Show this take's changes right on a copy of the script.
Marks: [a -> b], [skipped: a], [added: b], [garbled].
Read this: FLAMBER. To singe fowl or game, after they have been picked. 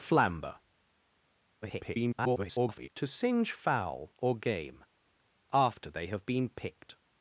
FLAMBER. [garbled] To singe fowl or game, after they have been picked.